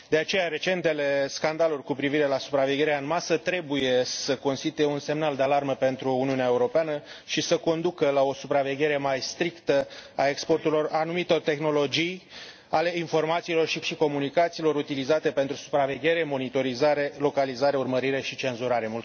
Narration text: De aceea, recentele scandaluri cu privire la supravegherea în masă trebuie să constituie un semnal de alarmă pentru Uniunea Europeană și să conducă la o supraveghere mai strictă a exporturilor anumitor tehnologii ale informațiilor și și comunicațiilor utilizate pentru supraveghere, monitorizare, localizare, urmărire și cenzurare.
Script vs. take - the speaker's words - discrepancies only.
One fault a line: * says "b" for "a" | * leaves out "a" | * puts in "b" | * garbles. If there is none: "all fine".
all fine